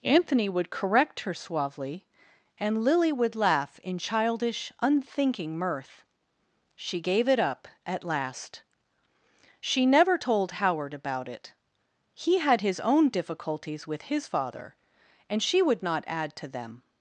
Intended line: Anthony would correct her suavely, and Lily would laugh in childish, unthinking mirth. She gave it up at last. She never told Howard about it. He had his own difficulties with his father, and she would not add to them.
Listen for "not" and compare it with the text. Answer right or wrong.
right